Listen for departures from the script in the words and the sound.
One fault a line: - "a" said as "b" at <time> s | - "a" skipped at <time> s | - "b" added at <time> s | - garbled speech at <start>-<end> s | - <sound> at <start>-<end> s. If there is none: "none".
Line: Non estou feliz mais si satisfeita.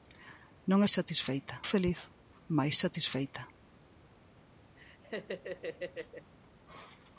- "estou" said as "satisfeita" at 0.9 s
- "si" skipped at 2.7 s
- laugh at 4.8-6.3 s